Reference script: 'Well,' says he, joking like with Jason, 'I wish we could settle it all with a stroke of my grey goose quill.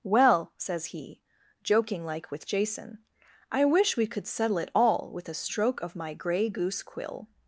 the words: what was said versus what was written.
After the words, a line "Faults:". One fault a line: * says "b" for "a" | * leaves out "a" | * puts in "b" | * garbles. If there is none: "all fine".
'Well,' says he, joking like with Jason, 'I wish we could settle it all with a stroke of my grey goose quill.
Faults:
all fine